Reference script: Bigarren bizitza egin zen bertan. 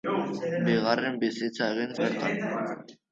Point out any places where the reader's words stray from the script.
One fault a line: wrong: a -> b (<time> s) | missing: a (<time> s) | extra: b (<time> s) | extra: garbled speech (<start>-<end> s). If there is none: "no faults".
missing: zen (1.9 s)